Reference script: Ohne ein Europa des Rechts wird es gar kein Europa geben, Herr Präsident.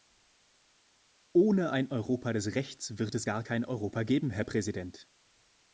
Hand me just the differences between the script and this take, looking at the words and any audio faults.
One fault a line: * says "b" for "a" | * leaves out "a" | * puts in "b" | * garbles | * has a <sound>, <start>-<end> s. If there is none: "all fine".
all fine